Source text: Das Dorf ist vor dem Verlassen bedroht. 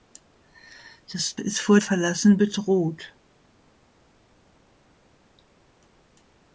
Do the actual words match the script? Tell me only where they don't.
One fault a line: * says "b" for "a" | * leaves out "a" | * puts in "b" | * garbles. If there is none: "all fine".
* leaves out "Dorf"
* leaves out "dem"